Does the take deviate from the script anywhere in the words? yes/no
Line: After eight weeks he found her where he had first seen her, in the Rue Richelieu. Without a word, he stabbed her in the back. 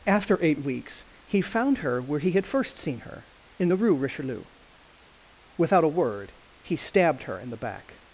no